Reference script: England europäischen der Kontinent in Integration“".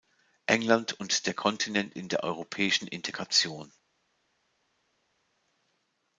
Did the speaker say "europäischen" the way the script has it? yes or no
no